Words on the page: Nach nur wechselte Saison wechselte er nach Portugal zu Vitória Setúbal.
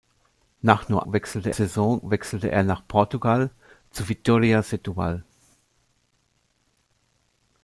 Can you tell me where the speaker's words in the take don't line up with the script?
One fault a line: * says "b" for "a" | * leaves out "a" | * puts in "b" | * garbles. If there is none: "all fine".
all fine